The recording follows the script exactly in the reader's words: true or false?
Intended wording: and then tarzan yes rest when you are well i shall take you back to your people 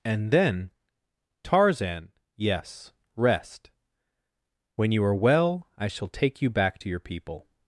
true